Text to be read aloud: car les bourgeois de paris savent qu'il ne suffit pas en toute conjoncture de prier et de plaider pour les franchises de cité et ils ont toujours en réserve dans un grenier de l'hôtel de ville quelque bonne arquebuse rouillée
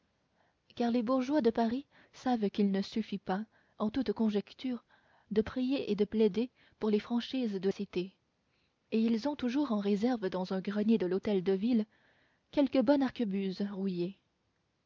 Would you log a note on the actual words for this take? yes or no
no